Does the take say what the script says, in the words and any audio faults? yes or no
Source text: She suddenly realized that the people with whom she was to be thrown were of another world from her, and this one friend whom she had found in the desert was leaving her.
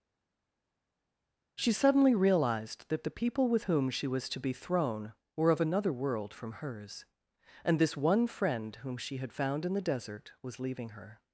no